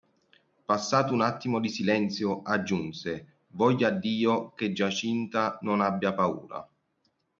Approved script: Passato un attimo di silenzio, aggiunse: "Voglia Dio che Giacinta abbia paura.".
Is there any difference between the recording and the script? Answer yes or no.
yes